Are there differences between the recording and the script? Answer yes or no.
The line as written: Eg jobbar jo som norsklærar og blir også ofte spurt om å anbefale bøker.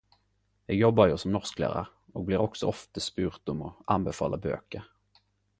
no